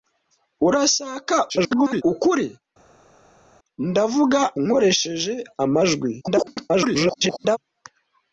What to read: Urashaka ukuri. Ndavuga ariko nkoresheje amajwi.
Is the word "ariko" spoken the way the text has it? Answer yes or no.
no